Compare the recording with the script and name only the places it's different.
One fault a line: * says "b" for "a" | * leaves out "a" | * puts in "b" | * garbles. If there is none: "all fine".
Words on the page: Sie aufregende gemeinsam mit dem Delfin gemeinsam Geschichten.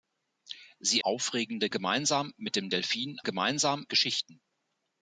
all fine